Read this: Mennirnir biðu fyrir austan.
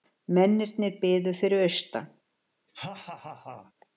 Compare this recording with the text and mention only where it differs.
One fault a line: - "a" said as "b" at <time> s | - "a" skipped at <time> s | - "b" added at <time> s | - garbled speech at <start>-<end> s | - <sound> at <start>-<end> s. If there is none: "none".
- laugh at 2.7-3.7 s